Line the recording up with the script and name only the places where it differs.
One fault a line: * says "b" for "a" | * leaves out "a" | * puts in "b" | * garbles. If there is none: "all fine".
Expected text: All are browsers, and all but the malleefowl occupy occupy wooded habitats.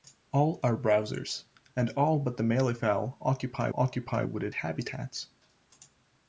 all fine